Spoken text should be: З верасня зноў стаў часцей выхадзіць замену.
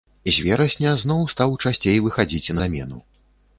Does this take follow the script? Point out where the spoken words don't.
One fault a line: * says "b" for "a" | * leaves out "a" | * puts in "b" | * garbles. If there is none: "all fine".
all fine